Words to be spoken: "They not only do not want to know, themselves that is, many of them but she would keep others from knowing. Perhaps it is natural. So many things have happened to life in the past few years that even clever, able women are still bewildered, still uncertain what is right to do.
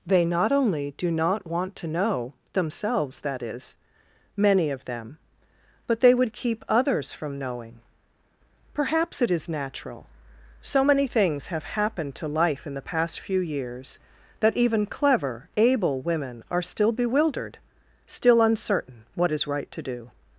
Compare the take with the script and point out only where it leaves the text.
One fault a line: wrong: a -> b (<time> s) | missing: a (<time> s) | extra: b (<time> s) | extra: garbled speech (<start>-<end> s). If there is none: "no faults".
wrong: she -> they (6.0 s)